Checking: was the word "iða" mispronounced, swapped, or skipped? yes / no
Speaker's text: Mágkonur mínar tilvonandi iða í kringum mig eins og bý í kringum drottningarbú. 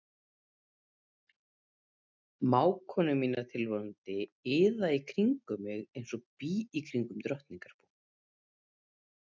no